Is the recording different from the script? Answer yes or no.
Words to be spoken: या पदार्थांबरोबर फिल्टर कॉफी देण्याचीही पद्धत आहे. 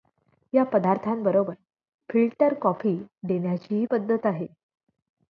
no